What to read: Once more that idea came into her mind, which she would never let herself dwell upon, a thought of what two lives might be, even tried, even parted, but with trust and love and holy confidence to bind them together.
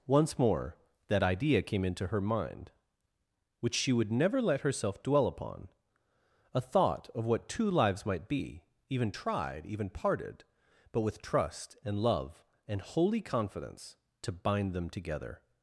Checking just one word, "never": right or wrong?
right